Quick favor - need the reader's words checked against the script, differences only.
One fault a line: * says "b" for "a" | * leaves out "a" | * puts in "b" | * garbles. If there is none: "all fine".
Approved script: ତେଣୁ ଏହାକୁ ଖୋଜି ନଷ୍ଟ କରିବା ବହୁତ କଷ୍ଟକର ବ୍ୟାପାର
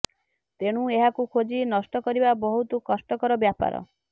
all fine